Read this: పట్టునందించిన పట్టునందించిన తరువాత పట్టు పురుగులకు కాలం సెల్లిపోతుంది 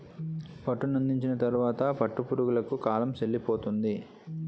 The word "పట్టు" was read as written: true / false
true